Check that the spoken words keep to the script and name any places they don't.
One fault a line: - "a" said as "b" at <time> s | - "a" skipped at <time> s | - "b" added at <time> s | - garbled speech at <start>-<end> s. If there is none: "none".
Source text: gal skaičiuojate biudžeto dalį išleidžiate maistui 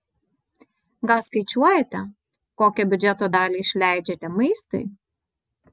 - "kokią" added at 2.6 s